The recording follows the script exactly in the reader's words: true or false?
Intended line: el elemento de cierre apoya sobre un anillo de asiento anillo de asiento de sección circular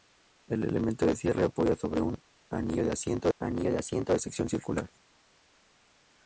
true